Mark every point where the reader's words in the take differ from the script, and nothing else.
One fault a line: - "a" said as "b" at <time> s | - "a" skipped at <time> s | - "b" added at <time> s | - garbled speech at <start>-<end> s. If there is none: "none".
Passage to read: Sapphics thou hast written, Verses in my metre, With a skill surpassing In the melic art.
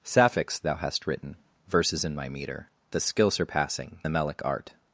- "With" skipped at 2.7 s
- "In" skipped at 4.0 s